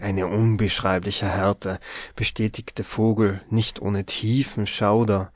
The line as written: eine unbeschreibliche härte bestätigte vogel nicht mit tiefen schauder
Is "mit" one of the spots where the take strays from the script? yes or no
yes